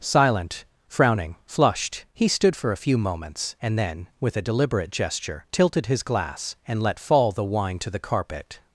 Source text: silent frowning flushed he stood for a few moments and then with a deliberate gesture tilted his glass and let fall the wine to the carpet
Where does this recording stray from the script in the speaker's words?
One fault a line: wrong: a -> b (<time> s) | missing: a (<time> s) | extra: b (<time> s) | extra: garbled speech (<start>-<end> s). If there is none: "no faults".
no faults